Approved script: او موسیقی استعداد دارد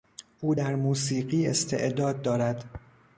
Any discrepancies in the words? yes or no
yes